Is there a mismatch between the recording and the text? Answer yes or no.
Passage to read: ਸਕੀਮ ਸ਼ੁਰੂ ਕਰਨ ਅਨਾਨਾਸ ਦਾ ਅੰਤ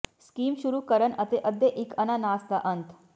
yes